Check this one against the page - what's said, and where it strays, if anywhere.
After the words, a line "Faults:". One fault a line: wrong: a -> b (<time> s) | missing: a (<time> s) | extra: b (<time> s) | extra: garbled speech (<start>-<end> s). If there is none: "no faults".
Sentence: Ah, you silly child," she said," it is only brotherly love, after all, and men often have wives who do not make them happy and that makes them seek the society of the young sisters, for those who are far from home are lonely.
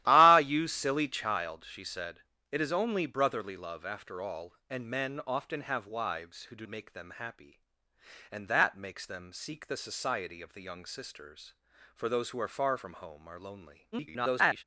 Ah, you silly child," she said," it is only brotherly love, after all, and men often have wives who do make them happy and that makes them seek the society of the young sisters, for those who are far from home are lonely. [garbled]
Faults:
missing: not (6.7 s)
extra: garbled speech (13.9-14.6 s)